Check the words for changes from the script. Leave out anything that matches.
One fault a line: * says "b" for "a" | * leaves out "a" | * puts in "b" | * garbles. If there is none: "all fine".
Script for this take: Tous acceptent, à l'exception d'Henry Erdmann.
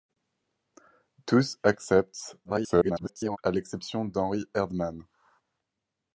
* garbles